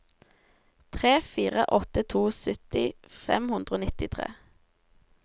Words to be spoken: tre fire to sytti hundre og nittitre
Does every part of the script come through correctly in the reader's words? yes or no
no